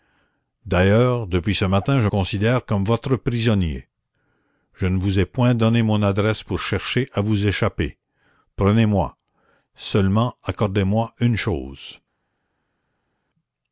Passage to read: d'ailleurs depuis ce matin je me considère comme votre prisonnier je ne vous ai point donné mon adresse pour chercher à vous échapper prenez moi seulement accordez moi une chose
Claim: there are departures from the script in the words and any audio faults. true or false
true